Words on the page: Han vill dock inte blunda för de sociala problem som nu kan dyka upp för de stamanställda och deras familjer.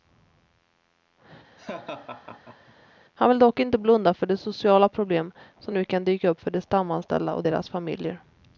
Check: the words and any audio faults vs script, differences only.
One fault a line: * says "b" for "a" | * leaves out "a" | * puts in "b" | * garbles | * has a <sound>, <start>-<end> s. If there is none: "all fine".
* has a laugh, 1.6-2.7 s